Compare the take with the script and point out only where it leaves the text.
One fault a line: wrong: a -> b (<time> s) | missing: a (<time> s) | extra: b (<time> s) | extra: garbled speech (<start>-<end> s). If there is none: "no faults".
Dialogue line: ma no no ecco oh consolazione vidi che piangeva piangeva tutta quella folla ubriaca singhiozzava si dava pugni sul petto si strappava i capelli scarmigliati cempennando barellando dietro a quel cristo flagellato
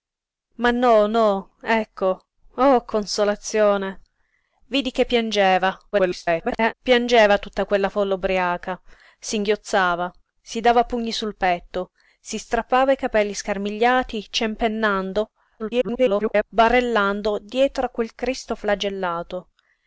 extra: garbled speech (5.9-6.7 s)
extra: garbled speech (15.6-16.4 s)